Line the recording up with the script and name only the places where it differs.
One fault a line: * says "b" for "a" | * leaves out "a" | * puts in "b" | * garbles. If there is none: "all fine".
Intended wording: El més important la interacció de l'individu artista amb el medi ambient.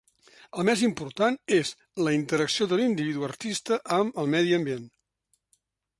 * puts in "és"